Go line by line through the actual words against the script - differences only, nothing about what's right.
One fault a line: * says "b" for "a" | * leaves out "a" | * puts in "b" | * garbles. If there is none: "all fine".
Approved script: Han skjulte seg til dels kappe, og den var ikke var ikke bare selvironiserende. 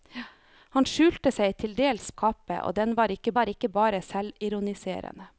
all fine